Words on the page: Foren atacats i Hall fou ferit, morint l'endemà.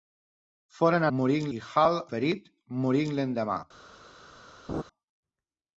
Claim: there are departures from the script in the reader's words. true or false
true